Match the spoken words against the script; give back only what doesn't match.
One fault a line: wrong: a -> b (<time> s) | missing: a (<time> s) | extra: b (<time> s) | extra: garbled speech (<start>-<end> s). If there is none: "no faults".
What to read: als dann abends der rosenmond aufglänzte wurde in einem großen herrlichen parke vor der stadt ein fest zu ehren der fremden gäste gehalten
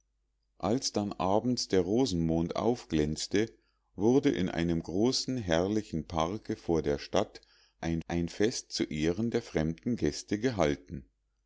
extra: ein (8.1 s)